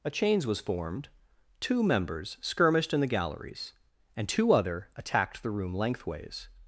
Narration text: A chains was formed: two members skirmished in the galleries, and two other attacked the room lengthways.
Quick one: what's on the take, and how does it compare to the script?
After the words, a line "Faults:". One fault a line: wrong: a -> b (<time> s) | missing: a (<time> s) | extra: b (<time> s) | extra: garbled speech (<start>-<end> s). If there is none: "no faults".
A chains was formed: two members skirmished in the galleries, and two other attacked the room lengthways.
Faults:
no faults